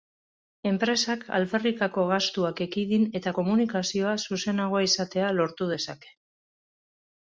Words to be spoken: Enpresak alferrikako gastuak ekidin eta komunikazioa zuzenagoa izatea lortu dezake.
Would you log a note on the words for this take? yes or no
no